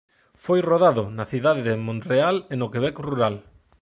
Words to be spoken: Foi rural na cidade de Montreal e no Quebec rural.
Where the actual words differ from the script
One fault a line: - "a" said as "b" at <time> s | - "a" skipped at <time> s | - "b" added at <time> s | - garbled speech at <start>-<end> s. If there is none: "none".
- "rural" said as "rodado" at 0.7 s